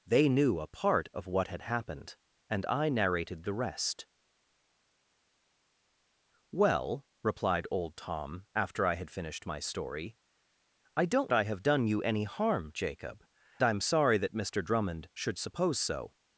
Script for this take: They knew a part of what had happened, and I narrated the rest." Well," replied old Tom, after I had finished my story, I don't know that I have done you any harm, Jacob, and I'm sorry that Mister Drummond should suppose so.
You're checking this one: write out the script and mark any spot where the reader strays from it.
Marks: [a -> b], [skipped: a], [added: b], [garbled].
They knew a part of what had happened, and I narrated the rest." Well," replied old Tom, after I had finished my story, I don't [skipped: know that] I have done you any harm, Jacob, [skipped: and] I'm sorry that Mister Drummond should suppose so.